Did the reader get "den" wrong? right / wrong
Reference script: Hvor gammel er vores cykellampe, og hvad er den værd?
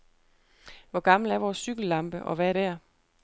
wrong